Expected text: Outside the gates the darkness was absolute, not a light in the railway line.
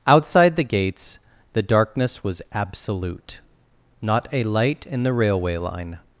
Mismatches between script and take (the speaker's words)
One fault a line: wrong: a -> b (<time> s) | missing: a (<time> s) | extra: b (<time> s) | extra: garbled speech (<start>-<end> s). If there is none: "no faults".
no faults